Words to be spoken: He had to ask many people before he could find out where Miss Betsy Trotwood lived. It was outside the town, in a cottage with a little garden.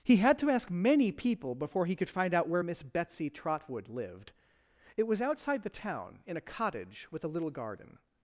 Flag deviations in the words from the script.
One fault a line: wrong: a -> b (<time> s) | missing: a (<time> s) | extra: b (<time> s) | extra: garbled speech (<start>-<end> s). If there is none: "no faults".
no faults